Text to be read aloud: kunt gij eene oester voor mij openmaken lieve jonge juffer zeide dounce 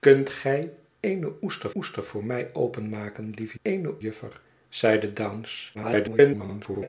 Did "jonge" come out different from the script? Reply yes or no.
yes